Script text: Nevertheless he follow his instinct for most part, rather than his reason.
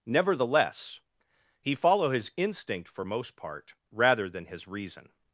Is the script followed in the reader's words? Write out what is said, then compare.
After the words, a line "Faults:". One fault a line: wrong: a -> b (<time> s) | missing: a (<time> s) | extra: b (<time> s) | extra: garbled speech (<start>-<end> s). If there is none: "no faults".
Nevertheless he follow his instinct for most part, rather than his reason.
Faults:
no faults